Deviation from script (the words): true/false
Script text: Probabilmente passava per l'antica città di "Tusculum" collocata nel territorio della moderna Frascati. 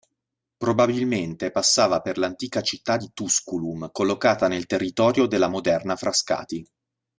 false